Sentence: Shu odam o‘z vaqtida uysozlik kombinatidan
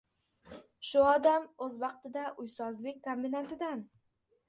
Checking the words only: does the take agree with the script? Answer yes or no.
yes